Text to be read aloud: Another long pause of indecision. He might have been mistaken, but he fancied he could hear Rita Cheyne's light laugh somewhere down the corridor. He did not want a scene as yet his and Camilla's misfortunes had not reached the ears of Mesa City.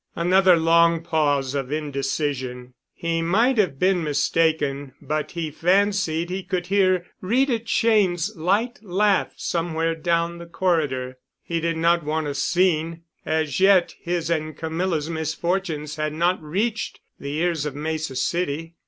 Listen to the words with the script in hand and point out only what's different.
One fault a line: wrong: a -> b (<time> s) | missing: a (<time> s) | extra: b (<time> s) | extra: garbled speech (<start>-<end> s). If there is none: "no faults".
no faults